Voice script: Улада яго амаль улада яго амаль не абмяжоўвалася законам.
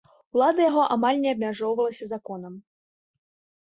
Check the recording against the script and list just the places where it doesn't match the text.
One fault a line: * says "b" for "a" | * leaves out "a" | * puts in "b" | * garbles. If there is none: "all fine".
* leaves out "улада яго амаль"